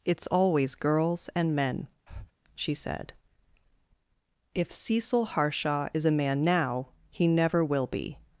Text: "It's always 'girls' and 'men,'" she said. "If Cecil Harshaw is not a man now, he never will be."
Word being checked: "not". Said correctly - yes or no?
no